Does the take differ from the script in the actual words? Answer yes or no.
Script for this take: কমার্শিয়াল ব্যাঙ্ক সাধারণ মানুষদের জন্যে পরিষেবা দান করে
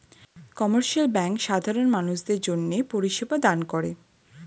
no